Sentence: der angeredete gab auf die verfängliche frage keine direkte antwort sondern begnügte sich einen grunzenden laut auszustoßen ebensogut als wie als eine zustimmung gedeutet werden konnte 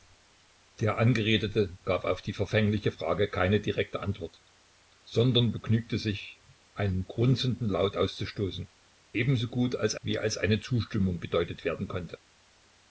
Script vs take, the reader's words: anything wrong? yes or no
no